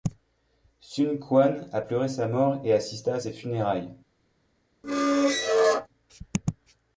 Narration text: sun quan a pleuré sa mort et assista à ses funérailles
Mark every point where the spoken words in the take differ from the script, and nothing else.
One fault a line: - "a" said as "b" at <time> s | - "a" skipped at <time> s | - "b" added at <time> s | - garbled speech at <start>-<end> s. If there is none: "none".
none